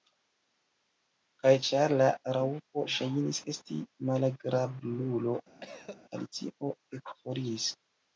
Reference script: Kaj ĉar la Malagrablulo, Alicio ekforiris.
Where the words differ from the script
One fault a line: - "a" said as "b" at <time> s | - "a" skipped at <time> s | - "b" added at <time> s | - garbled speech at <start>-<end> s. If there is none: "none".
- "Raŭpo ŝajnis esti" added at 2.4 s